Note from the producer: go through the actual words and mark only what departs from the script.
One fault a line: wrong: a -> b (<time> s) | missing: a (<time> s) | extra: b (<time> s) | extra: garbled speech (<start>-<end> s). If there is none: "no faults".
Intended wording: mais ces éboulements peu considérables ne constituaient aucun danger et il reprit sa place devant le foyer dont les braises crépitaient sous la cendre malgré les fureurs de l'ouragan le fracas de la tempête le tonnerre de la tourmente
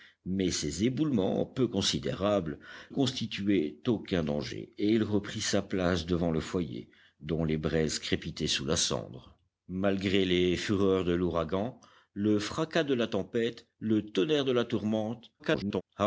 missing: ne (2.6 s)
extra: garbled speech (15.4-15.8 s)